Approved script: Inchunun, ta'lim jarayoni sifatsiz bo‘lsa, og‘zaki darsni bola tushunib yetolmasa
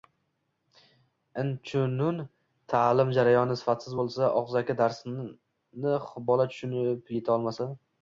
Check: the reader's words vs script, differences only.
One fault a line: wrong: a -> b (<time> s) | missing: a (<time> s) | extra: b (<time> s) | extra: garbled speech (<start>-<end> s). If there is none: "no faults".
no faults